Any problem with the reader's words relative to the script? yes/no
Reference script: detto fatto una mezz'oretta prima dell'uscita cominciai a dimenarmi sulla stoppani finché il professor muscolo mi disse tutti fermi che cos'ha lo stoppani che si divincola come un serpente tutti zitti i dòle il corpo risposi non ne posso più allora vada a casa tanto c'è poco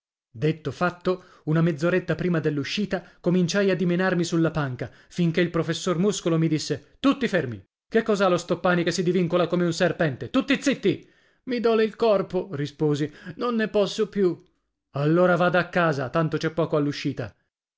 yes